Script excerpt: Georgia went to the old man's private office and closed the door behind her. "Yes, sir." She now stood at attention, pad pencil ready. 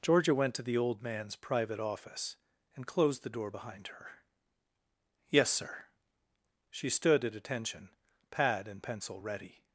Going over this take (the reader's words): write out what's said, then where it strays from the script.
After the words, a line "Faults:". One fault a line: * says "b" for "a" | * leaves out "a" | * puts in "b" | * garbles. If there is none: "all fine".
Georgia went to the old man's private office and closed the door behind her. "Yes, sir." She stood at attention, pad and pencil ready.
Faults:
* leaves out "now"
* puts in "and"